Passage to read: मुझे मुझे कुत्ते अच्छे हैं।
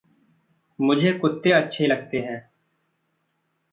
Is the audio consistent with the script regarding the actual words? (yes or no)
no